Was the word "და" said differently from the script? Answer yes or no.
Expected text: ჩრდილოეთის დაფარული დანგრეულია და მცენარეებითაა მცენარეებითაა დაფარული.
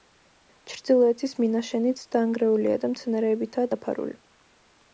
no